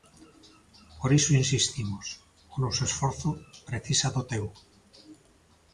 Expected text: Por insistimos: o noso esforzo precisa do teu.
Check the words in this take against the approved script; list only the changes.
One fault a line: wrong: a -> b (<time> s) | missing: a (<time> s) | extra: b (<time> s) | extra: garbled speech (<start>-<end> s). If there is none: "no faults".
extra: iso (1.2 s)